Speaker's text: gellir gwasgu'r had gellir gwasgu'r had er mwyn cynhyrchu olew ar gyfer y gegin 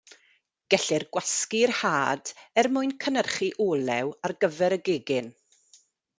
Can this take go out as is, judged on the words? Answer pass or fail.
fail